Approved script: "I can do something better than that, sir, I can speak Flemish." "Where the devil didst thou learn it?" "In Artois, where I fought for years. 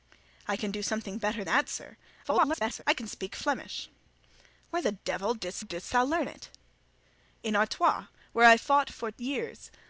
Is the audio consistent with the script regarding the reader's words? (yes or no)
no